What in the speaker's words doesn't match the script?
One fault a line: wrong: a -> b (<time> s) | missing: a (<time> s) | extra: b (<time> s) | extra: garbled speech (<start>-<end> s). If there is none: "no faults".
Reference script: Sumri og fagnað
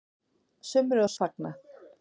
no faults